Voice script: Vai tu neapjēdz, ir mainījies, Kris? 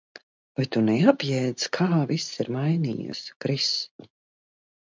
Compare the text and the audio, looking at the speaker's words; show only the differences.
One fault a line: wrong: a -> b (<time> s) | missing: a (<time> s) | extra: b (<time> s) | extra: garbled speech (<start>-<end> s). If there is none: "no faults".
extra: kā viss (1.8 s)